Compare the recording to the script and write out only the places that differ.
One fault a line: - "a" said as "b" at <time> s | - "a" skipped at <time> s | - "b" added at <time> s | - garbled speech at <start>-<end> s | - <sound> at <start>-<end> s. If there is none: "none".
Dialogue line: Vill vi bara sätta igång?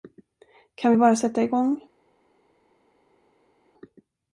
- "Vill" said as "Kan" at 0.8 s